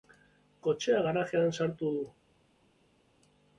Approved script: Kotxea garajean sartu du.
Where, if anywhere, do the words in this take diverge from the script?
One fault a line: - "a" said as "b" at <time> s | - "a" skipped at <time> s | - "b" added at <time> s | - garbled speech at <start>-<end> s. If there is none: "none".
none